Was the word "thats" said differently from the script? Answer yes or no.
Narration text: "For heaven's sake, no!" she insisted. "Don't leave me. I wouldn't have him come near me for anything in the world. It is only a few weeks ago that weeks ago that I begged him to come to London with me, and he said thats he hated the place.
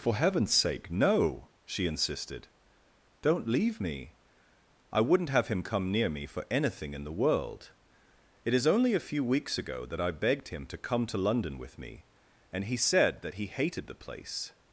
yes